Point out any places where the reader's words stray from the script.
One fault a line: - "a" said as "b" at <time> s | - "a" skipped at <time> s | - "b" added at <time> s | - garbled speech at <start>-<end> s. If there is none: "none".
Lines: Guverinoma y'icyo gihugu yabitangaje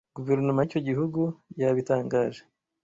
none